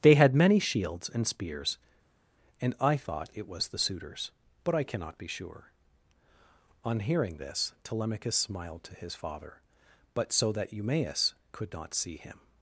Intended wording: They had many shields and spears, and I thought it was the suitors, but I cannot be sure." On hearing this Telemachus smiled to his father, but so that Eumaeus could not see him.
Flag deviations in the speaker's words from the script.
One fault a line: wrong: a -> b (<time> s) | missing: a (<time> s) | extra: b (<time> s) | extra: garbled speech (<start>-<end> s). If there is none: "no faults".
no faults